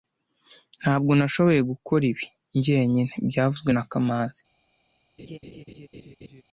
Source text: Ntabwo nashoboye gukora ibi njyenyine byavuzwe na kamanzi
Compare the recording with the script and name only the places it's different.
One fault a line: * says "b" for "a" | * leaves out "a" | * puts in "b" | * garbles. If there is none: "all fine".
all fine